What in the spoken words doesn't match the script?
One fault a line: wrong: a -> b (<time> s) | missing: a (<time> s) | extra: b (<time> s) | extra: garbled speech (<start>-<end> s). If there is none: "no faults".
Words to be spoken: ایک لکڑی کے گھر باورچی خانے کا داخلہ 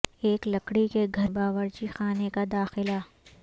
no faults